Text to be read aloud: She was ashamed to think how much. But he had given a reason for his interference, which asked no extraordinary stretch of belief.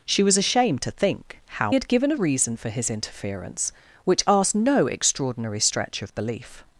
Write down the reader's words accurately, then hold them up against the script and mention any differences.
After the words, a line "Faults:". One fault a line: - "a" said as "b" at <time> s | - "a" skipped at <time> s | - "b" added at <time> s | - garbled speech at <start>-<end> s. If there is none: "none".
She was ashamed to think how had given a reason for his interference, which asked no extraordinary stretch of belief.
Faults:
- "much But he" skipped at 1.7 s